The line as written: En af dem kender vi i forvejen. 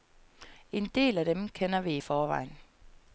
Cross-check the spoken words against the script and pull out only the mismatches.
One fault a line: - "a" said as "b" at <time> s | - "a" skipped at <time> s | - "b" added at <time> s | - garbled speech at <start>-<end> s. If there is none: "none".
- "del" added at 0.9 s